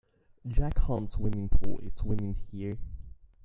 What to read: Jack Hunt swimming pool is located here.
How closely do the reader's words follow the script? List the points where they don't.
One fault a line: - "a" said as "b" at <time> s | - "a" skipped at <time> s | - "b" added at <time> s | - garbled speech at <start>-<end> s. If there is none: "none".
- "located" said as "swimming" at 2.0 s